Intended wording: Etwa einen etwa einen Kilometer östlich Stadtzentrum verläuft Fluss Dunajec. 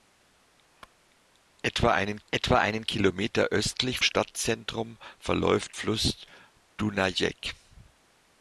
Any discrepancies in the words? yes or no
no